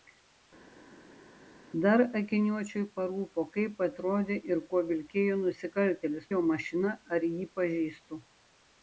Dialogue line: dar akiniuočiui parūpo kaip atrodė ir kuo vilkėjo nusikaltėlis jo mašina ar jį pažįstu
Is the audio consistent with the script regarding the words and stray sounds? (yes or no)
yes